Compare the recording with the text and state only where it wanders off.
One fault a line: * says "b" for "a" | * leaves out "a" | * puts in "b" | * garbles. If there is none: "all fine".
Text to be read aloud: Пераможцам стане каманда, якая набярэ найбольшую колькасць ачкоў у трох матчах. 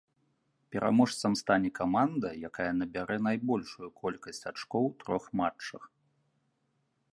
all fine